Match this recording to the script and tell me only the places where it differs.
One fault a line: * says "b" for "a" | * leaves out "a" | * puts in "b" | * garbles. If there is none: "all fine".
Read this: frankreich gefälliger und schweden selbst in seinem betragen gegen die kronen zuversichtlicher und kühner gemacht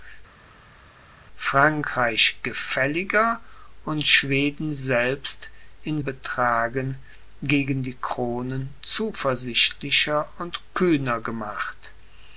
* leaves out "seinem"